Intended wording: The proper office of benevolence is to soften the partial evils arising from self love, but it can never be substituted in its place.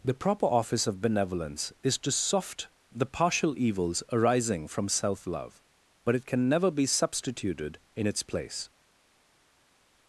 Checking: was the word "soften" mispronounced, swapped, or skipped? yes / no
yes